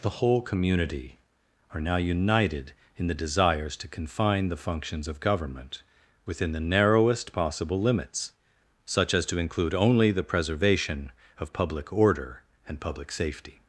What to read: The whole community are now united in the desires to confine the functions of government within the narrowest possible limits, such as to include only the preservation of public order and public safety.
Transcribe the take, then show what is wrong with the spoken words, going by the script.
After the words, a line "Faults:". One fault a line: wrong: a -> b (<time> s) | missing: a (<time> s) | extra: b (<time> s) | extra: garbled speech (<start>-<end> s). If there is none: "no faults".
The whole community are now united in the desires to confine the functions of government within the narrowest possible limits, such as to include only the preservation of public order and public safety.
Faults:
no faults